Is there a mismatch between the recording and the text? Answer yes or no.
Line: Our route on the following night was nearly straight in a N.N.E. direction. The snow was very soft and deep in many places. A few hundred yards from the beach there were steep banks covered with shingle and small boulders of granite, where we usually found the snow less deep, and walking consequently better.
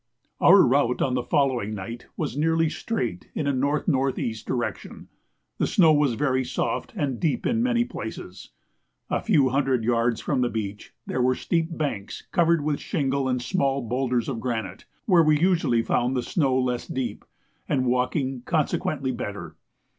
no